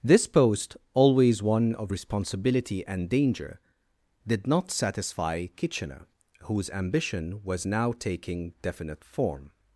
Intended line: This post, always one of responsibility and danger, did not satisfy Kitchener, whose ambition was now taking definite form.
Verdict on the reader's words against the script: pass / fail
pass